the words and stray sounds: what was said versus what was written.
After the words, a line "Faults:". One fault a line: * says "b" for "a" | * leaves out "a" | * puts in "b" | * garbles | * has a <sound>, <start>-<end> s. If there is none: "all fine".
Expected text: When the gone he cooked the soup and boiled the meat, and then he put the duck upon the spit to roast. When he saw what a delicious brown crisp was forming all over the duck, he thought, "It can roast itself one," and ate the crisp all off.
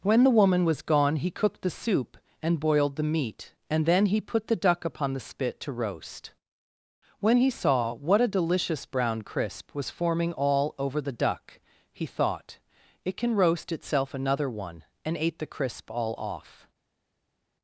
When the woman was gone he cooked the soup and boiled the meat, and then he put the duck upon the spit to roast. When he saw what a delicious brown crisp was forming all over the duck, he thought, "It can roast itself another one," and ate the crisp all off.
Faults:
* puts in "woman was"
* puts in "another"